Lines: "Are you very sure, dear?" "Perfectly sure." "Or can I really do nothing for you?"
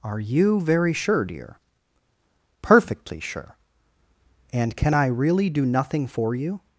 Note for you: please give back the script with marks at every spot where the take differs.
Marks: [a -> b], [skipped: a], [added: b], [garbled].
"Are you very sure, dear?" "Perfectly sure." ["Or -> And] can I really do nothing for you?"